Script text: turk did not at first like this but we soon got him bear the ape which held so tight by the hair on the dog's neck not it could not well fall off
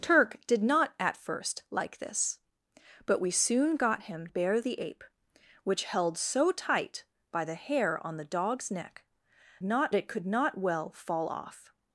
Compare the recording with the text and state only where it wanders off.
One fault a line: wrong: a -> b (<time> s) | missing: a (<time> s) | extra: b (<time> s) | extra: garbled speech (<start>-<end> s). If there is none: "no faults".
no faults